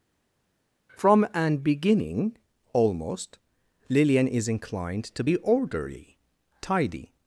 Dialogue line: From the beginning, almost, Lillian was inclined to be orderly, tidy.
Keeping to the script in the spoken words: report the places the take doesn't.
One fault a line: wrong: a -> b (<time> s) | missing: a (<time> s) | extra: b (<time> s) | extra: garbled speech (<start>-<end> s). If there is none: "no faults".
wrong: the -> an (1.3 s)
wrong: was -> is (4.3 s)